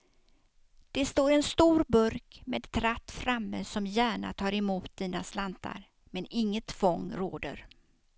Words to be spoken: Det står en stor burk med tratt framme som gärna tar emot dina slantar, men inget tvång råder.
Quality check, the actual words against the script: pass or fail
pass